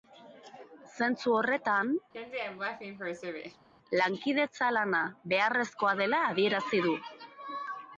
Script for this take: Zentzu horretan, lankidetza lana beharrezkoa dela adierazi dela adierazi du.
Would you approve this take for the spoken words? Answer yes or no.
no